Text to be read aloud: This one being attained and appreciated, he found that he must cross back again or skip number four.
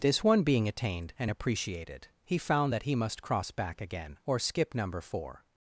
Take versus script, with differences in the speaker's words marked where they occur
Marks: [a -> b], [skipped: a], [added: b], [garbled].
This one being attained and appreciated, he found that he must cross back again or skip number four.